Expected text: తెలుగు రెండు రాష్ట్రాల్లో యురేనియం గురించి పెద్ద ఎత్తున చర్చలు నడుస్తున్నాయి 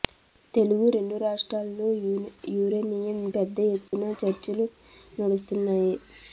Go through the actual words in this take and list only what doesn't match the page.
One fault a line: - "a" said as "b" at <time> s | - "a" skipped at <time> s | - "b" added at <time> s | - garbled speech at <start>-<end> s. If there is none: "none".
- "గురించి" skipped at 3.2 s